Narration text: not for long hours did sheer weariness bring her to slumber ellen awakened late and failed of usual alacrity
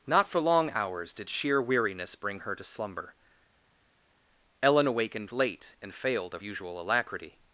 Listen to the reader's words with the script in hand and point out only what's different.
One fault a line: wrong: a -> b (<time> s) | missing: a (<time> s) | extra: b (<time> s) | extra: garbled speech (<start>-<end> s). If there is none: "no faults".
no faults